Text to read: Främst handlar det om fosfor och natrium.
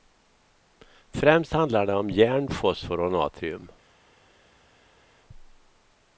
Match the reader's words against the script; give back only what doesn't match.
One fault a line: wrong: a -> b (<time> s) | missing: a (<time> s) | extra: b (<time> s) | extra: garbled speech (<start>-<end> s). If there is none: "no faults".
extra: järn (2.1 s)